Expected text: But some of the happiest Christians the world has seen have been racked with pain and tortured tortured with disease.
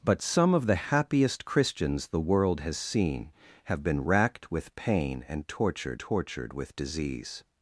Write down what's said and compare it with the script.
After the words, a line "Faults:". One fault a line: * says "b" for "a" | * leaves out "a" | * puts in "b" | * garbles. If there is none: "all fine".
But some of the happiest Christians the world has seen have been racked with pain and tortured tortured with disease.
Faults:
all fine